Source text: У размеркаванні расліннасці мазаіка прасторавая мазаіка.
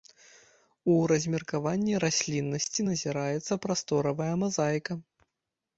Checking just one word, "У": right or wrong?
right